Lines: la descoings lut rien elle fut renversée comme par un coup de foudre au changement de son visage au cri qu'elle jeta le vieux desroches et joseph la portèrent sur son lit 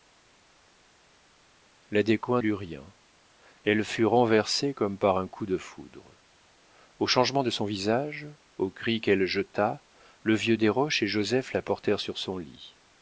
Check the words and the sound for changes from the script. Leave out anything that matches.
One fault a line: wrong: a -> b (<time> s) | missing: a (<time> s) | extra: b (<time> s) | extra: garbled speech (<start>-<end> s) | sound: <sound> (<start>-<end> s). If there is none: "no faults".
no faults